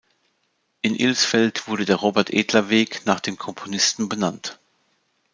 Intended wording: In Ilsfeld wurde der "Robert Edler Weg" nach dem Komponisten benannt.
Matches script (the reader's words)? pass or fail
pass